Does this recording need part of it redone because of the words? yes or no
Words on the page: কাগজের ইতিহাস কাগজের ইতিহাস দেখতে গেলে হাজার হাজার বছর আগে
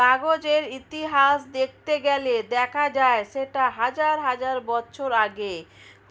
yes